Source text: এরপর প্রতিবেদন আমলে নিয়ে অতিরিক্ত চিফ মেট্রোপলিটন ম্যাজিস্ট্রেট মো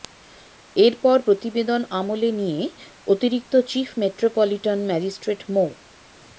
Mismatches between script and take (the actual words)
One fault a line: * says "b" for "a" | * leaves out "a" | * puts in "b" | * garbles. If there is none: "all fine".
all fine